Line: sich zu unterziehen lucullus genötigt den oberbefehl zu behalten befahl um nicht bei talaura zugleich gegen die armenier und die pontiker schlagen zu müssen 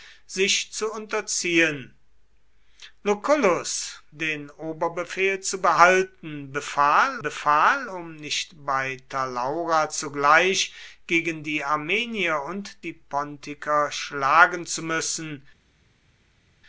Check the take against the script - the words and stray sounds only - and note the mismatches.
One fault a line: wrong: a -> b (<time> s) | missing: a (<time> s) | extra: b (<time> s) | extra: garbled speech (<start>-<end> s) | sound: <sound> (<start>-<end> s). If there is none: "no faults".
missing: genötigt (4.0 s)
extra: befahl (7.2 s)